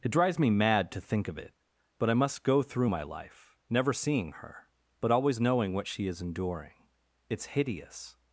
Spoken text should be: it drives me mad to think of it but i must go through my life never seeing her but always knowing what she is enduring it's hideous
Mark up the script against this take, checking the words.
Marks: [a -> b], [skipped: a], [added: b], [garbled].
it drives me mad to think of it but i must go through my life never seeing her but always knowing what she is enduring it's hideous